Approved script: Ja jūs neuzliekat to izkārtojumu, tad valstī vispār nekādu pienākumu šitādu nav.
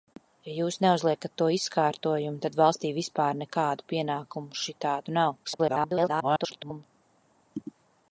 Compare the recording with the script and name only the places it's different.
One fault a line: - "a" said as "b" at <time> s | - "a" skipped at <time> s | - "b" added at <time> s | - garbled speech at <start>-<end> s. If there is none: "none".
- garbled speech at 5.4-6.9 s